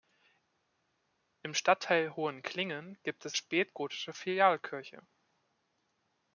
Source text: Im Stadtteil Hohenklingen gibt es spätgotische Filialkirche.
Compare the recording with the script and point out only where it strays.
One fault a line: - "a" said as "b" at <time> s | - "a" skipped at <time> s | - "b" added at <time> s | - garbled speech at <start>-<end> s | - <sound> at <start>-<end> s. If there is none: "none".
none